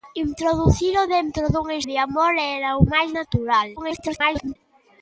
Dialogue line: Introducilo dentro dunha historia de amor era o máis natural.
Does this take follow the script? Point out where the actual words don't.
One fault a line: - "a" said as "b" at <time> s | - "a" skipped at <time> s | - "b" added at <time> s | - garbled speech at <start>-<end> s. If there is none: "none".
- "historia" skipped at 1.8 s
- garbled speech at 3.8-4.6 s